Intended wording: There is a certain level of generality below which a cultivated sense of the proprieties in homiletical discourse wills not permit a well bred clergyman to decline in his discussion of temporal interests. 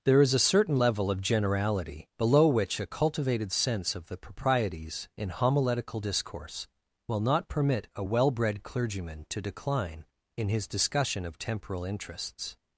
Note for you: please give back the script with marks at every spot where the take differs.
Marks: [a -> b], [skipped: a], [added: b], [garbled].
There is a certain level of generality below which a cultivated sense of the proprieties in homiletical discourse [wills -> will] not permit a well bred clergyman to decline in his discussion of temporal interests.